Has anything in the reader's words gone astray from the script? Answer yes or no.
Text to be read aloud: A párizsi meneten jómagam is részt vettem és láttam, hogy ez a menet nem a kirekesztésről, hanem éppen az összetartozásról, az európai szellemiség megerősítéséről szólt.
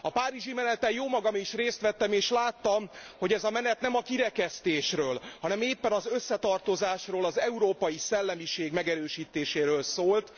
no